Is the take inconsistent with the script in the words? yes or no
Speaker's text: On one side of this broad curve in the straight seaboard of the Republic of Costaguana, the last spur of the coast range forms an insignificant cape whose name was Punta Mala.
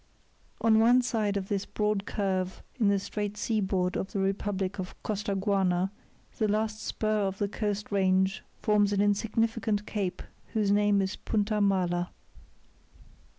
yes